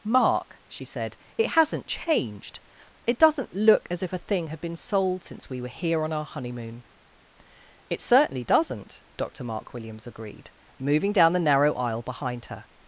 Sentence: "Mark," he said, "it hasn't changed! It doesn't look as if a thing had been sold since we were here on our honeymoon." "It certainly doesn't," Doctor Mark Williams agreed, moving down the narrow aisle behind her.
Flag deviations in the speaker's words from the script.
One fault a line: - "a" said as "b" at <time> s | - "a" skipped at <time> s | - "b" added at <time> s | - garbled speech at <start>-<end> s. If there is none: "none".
- "he" said as "she" at 0.7 s